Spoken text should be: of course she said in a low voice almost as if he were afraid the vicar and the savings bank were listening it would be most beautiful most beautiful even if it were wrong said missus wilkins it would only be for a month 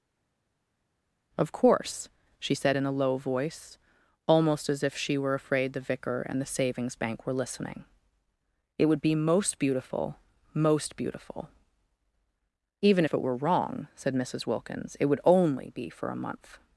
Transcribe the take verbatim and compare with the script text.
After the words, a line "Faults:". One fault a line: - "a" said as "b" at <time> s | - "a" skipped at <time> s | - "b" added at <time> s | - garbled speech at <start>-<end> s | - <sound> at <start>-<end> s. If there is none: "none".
of course she said in a low voice almost as if she were afraid the vicar and the savings bank were listening it would be most beautiful most beautiful even if it were wrong said missus wilkins it would only be for a month
Faults:
- "he" said as "she" at 5.0 s